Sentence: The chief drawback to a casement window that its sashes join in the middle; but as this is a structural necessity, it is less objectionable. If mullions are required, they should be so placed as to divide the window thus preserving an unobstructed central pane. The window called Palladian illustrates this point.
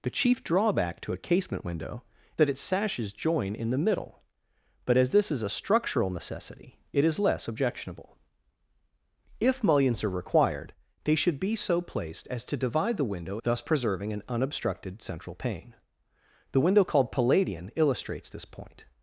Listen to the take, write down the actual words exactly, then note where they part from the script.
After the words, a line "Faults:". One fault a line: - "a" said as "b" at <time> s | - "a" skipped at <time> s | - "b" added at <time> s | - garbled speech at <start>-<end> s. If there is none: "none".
The chief drawback to a casement window that its sashes join in the middle; but as this is a structural necessity, it is less objectionable. If mullions are required, they should be so placed as to divide the window thus preserving an unobstructed central pane. The window called Palladian illustrates this point.
Faults:
none